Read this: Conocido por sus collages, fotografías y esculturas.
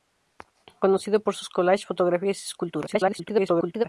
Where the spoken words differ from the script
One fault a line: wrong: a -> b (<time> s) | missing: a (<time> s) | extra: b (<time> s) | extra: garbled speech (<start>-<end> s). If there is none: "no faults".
extra: garbled speech (2.9-3.8 s)